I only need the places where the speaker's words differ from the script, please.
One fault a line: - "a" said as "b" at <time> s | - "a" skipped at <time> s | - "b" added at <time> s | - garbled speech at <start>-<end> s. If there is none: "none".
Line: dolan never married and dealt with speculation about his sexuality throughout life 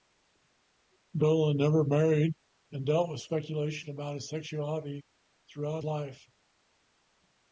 none